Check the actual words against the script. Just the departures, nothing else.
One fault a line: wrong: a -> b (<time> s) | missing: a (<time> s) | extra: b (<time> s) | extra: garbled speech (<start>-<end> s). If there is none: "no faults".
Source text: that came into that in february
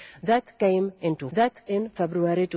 no faults